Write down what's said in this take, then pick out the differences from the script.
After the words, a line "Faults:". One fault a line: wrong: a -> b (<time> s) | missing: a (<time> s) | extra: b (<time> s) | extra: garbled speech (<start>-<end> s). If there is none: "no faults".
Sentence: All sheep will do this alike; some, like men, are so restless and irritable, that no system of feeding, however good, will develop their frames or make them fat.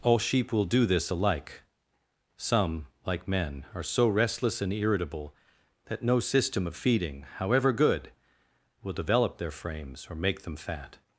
All sheep will do this alike; some, like men, are so restless and irritable, that no system of feeding, however good, will develop their frames or make them fat.
Faults:
no faults